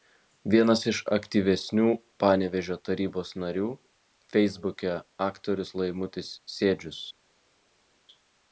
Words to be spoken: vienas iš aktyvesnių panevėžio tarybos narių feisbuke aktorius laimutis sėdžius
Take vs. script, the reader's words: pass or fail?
pass